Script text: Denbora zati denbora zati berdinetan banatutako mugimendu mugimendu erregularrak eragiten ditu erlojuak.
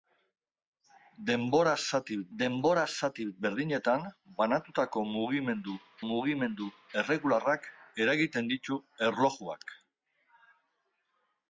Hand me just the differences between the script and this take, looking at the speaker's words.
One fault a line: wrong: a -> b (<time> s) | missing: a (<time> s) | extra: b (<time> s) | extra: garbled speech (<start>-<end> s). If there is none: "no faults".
no faults